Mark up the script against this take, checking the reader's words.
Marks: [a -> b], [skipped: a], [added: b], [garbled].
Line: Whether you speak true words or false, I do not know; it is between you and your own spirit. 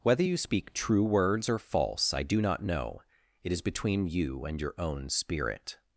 Whether you speak true words or false, I do not know; it is between you and your own spirit.